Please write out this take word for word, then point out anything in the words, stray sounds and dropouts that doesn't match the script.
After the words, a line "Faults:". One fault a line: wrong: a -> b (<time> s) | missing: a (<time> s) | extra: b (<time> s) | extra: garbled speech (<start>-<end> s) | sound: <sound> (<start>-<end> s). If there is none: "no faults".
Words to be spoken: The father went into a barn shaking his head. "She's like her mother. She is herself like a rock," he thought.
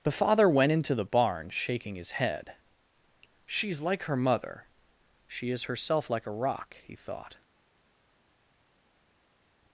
The father went into the barn shaking his head. "She's like her mother. She is herself like a rock," he thought.
Faults:
wrong: a -> the (0.9 s)